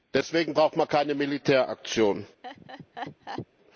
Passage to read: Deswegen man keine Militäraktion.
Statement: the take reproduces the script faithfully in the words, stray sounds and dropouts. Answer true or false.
false